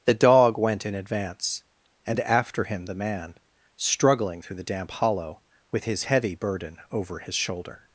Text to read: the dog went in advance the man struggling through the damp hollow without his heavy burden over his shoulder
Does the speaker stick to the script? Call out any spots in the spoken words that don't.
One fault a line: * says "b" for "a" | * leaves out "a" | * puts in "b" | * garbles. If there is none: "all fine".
* puts in "and after him"
* says "with" for "without"